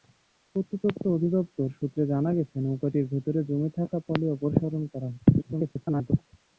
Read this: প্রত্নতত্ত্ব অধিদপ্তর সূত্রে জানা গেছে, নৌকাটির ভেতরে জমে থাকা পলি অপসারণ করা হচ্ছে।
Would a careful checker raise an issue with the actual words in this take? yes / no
yes